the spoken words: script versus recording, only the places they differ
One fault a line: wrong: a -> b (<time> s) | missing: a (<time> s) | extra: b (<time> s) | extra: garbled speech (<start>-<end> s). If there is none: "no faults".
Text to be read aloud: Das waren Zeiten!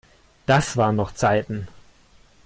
extra: noch (0.9 s)